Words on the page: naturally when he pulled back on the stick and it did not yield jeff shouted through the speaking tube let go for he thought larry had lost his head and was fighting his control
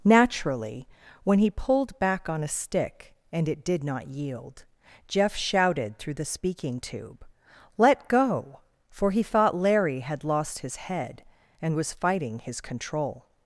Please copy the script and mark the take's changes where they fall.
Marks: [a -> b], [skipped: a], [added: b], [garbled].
naturally when he pulled back on [the -> a] stick and it did not yield jeff shouted through the speaking tube let go for he thought larry had lost his head and was fighting his control